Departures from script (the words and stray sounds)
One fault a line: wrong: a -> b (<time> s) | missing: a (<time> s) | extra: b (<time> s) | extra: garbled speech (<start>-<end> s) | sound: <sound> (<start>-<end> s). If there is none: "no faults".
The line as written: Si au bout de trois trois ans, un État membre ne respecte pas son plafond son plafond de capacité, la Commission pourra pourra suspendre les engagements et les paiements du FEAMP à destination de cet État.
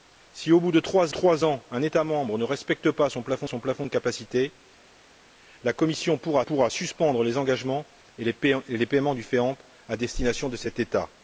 no faults